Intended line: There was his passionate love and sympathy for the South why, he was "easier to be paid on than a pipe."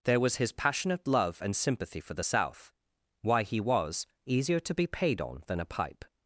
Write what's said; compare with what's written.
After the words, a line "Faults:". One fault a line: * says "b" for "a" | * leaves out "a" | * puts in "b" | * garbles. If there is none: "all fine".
There was his passionate love and sympathy for the South why, he was "easier to be paid on than a pipe."
Faults:
all fine